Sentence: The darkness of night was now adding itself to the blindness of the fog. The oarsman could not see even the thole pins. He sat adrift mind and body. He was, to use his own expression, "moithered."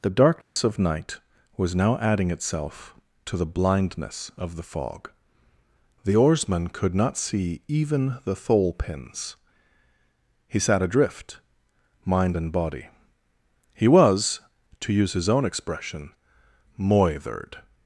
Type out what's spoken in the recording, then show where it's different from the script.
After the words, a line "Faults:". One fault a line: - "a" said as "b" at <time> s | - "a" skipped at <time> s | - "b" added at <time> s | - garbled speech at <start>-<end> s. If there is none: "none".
The darkness of night was now adding itself to the blindness of the fog. The oarsman could not see even the thole pins. He sat adrift mind and body. He was, to use his own expression, "moithered."
Faults:
none